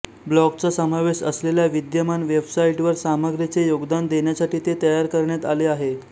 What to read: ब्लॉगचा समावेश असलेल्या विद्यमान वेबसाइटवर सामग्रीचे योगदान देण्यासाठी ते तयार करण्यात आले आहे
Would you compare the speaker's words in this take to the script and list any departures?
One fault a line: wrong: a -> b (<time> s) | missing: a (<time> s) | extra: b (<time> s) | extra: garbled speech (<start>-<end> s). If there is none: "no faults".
no faults